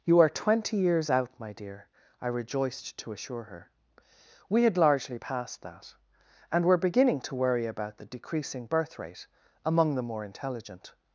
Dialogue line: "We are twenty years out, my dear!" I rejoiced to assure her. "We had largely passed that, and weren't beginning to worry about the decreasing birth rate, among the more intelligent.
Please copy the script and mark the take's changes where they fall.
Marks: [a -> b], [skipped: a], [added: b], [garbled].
["We -> You] are twenty years out, my dear!" I rejoiced to assure her. "We had largely passed that, and [weren't -> were] beginning to worry about the decreasing birth rate, among the more intelligent.